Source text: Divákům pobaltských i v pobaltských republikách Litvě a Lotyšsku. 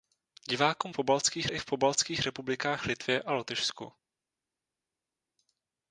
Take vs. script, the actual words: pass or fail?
pass